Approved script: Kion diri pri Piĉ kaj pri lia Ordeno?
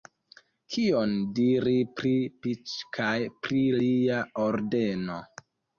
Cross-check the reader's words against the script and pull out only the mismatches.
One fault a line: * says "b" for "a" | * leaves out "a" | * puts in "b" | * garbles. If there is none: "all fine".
all fine